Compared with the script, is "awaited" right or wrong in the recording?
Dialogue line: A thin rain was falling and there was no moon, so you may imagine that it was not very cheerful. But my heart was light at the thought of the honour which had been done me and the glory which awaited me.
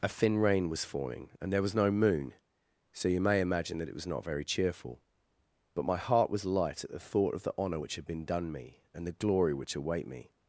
wrong